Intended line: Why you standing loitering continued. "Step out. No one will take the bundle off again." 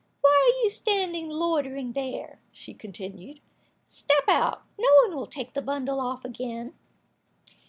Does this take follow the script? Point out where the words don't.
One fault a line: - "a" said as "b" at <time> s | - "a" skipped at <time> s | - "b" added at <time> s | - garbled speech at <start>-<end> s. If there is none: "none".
- "are" added at 0.5 s
- "there she" added at 1.9 s